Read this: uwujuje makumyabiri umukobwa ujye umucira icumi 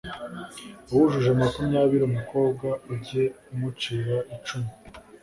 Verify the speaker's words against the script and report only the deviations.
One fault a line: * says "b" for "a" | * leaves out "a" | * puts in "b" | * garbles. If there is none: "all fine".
all fine